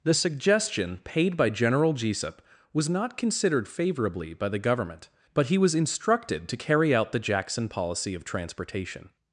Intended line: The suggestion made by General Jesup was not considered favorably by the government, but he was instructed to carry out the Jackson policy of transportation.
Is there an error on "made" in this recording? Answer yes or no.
yes